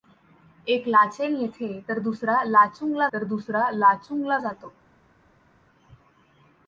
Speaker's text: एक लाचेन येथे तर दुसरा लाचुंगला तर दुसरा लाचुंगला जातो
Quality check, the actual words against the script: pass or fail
pass